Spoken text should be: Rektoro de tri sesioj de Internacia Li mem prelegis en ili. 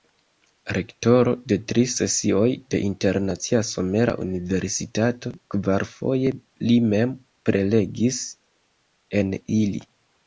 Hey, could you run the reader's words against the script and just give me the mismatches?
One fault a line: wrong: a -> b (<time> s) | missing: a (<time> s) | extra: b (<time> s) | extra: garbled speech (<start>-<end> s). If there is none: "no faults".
extra: Somera Universitato kvarfoje (3.7 s)